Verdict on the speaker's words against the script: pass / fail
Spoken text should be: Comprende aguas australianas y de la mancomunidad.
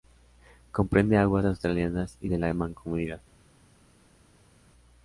pass